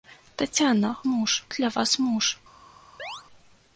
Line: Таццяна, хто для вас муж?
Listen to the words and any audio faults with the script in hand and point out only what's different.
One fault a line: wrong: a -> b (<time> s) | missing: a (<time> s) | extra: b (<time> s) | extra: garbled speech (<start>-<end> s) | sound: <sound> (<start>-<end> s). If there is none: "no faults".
wrong: хто -> муж (1.0 s)
sound: chirp (3.0-3.2 s)